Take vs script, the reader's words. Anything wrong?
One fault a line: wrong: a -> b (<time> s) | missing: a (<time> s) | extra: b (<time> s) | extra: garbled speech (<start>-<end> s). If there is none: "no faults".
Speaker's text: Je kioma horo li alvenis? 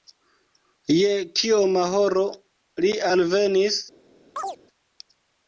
no faults